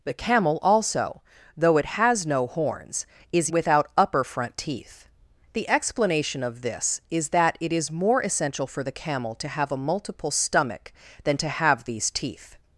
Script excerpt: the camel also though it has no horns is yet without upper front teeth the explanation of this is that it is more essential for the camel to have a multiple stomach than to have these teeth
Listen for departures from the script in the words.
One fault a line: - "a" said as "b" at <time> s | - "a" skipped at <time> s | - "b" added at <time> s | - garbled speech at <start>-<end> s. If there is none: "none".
- "yet" skipped at 3.5 s